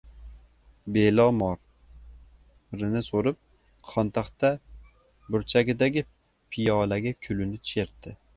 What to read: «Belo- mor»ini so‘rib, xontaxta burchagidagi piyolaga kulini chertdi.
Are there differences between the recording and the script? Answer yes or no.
no